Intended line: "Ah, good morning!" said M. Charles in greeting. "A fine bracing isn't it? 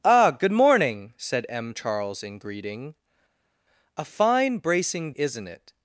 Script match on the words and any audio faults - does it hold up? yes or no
yes